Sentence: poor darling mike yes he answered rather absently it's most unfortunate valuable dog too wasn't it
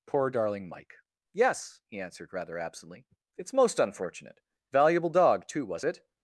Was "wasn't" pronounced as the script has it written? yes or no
no